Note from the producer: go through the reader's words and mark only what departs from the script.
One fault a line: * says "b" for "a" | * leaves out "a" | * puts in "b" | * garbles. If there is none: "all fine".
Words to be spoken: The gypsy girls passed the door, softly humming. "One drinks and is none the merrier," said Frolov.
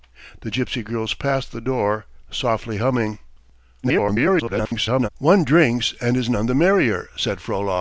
* garbles